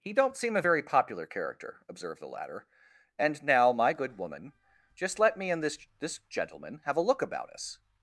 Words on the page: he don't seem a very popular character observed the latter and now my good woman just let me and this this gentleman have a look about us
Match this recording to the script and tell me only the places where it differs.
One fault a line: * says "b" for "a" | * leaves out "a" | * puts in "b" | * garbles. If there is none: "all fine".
all fine